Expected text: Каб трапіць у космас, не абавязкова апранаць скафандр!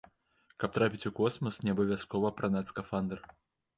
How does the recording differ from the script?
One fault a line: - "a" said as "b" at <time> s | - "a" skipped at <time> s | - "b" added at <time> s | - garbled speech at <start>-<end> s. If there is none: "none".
none